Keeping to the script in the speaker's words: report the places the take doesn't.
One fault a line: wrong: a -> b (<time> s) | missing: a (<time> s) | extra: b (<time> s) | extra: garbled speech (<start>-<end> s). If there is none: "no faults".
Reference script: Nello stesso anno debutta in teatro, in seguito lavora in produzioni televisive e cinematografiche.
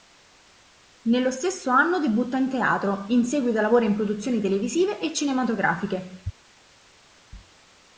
no faults